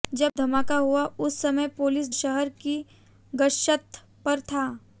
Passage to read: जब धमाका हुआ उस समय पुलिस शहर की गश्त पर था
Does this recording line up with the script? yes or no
yes